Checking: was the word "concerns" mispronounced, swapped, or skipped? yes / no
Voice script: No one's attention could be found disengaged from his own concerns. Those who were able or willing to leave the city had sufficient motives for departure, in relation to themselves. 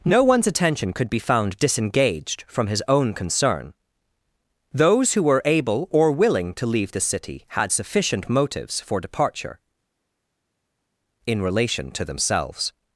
yes